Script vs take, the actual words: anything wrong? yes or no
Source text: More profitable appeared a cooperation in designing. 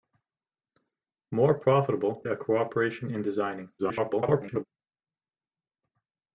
yes